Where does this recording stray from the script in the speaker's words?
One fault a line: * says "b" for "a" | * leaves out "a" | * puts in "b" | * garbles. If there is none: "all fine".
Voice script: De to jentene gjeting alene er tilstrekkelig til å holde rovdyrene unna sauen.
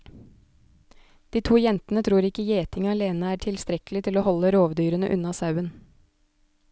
* puts in "tror ikke"